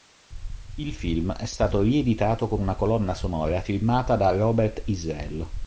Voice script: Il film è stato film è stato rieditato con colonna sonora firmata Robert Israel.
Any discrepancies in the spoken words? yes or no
yes